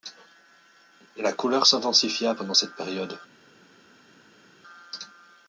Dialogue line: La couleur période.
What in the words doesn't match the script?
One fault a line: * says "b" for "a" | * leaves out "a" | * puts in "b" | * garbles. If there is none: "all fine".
* puts in "s'intensifia pendant cette"